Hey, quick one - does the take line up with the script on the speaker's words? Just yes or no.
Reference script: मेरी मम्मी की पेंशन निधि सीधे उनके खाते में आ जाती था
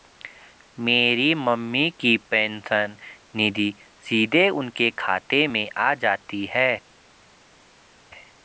no